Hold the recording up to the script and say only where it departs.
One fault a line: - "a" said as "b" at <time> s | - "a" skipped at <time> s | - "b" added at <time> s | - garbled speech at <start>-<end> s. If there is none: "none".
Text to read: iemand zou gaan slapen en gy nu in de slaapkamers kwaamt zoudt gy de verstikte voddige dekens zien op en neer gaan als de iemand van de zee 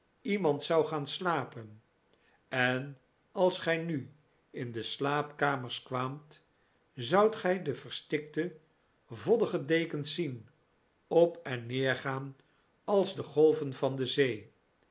- "als" added at 3.3 s
- "iemand" said as "golven" at 13.2 s